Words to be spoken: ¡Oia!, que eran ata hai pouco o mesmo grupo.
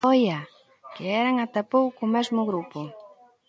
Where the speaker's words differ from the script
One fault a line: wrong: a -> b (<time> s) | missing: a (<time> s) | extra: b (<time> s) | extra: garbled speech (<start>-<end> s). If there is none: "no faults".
no faults